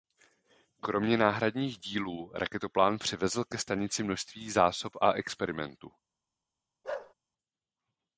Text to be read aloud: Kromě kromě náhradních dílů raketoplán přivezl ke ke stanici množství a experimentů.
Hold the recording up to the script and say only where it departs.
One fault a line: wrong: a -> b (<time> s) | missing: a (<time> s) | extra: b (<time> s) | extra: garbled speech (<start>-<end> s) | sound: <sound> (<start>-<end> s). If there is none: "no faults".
missing: kromě (1.2 s)
missing: ke (3.6 s)
extra: zásob (4.5 s)
sound: bark (6.8-7.1 s)